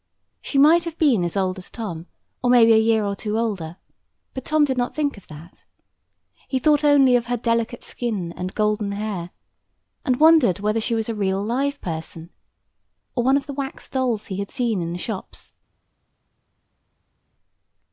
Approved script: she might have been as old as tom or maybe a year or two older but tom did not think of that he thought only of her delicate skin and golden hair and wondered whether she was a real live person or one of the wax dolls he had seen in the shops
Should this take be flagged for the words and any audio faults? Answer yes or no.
no